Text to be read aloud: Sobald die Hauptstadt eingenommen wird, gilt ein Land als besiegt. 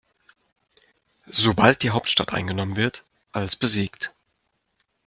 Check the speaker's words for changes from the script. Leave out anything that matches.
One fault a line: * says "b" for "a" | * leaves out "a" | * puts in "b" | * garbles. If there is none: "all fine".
* leaves out "gilt ein Land"